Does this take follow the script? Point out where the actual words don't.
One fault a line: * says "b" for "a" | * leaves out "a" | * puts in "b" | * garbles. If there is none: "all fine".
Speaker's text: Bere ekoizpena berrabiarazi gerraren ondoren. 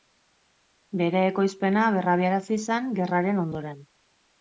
* puts in "zen"